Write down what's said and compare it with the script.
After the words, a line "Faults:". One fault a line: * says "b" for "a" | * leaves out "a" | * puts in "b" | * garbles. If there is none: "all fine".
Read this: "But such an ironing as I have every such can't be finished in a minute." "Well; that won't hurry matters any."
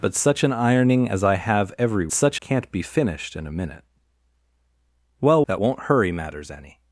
"But such an ironing as I have every such can't be finished in a minute." "Well; that won't hurry matters any."
Faults:
all fine